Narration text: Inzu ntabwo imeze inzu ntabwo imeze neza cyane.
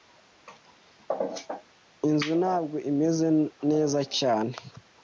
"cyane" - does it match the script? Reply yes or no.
yes